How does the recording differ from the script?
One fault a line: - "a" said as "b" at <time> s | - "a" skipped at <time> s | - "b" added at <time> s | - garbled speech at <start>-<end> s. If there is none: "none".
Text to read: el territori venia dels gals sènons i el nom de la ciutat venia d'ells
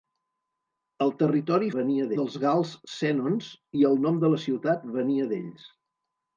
none